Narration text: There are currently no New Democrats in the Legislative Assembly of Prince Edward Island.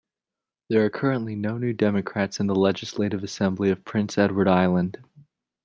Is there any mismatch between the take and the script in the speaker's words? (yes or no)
no